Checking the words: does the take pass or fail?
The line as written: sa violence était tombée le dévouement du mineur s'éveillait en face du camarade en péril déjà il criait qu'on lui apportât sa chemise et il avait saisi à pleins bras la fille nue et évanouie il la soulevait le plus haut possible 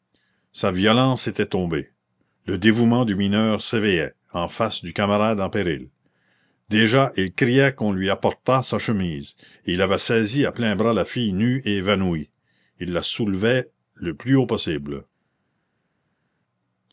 pass